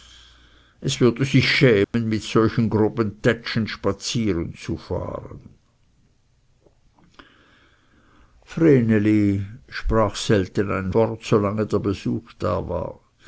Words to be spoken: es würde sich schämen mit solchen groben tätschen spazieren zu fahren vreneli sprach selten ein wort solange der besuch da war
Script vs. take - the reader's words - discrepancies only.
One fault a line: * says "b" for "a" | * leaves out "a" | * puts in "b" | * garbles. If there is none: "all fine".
all fine